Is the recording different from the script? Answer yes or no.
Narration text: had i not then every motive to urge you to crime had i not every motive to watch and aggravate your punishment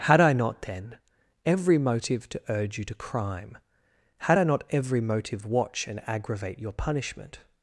yes